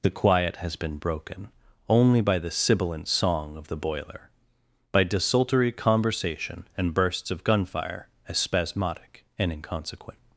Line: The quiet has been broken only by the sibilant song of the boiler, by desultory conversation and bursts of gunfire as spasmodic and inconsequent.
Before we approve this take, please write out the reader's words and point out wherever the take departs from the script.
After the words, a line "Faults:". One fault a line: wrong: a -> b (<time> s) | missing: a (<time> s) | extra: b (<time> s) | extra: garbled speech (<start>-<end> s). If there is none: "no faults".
The quiet has been broken only by the sibilant song of the boiler, by desultory conversation and bursts of gunfire as spasmodic and inconsequent.
Faults:
no faults